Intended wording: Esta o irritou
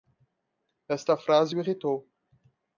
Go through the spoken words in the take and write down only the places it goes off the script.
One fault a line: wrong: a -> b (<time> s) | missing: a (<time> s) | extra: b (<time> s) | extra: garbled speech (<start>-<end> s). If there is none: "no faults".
extra: frase (1.1 s)